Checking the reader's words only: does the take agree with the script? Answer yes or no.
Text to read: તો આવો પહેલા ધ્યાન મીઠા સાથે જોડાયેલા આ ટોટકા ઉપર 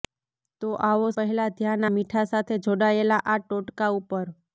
yes